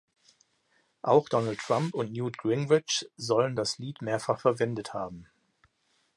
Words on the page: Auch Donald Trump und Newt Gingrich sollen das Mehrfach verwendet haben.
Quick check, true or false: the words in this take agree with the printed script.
false